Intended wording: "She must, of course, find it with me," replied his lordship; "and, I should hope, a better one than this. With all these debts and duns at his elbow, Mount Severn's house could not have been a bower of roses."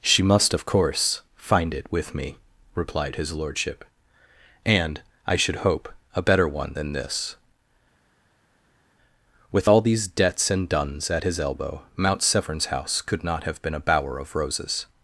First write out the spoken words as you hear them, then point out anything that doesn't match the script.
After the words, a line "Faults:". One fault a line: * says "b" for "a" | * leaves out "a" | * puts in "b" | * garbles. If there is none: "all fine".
"She must, of course, find it with me," replied his lordship; "and, I should hope, a better one than this. With all these debts and duns at his elbow, Mount Severn's house could not have been a bower of roses."
Faults:
all fine